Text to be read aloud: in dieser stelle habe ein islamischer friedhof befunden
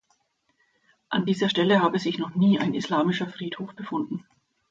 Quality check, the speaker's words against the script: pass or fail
fail